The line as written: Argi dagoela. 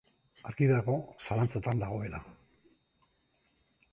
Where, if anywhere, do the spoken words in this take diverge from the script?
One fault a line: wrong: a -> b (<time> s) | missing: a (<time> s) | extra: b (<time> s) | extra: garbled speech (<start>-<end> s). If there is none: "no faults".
extra: dago zalantzatan (0.7 s)